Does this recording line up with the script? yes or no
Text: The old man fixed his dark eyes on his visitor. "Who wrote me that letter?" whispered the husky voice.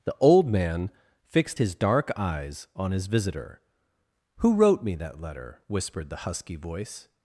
yes